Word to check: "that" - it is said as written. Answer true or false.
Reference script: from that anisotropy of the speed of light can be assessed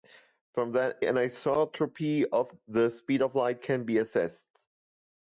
true